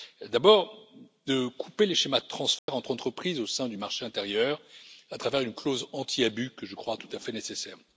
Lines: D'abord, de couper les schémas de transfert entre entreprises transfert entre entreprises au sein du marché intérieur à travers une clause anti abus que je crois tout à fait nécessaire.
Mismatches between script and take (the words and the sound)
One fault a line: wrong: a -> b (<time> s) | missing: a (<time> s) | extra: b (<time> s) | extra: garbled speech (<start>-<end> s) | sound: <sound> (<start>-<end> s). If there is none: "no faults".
sound: dropout (2.6-2.7 s)
missing: transfert entre entreprises (3.4 s)